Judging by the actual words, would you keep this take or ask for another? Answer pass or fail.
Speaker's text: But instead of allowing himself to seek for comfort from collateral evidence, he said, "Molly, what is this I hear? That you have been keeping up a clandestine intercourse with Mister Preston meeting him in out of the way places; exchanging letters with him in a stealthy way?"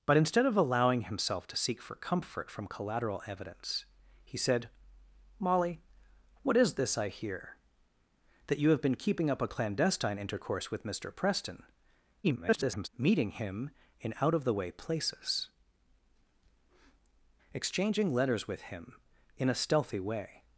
fail